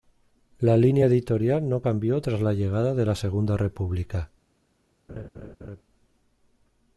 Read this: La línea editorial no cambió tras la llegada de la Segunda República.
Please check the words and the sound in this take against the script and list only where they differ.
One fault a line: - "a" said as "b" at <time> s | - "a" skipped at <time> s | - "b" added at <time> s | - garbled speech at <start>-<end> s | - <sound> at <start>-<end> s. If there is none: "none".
- laugh at 5.1-5.8 s